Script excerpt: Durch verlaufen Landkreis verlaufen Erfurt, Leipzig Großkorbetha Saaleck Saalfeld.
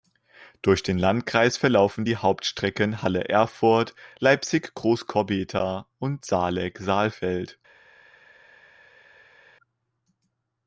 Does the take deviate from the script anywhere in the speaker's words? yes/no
yes